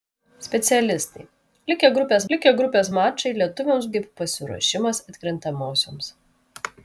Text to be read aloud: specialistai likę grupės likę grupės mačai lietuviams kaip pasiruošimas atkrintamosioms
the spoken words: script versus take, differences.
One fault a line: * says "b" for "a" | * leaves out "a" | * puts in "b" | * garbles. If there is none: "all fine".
all fine